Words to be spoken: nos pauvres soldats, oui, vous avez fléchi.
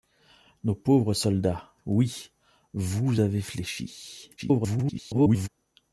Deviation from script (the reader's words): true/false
true